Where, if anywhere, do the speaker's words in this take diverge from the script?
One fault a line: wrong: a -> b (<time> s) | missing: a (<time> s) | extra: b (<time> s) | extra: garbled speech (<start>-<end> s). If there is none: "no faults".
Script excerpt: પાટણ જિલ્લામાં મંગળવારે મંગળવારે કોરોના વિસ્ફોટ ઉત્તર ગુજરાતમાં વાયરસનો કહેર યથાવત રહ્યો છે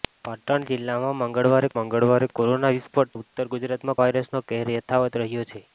no faults